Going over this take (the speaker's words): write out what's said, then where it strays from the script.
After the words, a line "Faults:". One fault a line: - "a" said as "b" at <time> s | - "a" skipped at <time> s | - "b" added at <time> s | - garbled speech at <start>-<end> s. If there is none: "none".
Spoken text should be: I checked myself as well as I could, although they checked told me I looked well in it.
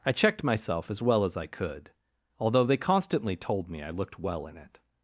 I checked myself as well as I could, although they constantly told me I looked well in it.
Faults:
- "checked" said as "constantly" at 2.8 s